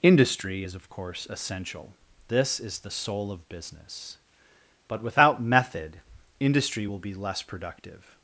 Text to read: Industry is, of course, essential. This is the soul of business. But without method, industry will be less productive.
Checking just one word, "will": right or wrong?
right